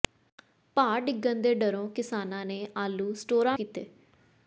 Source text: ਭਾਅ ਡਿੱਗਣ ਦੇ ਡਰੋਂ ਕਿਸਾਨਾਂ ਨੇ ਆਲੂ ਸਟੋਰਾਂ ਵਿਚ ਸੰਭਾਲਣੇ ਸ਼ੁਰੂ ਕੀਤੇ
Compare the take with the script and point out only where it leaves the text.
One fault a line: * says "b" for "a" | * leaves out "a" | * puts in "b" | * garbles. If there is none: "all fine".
* leaves out "ਵਿਚ ਸੰਭਾਲਣੇ ਸ਼ੁਰੂ"